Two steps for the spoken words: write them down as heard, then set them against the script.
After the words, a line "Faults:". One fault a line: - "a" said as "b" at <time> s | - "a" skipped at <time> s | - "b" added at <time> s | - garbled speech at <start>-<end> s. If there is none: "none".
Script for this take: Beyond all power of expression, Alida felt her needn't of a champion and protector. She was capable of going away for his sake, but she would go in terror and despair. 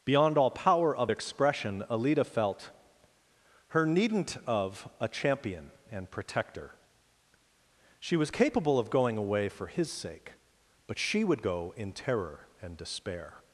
Beyond all power of expression, Alida felt her needn't of a champion and protector. She was capable of going away for his sake, but she would go in terror and despair.
Faults:
none